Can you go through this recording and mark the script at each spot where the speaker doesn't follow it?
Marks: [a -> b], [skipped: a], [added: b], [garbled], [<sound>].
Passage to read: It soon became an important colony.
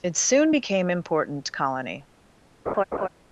It soon became [skipped: an] important colony. [laugh]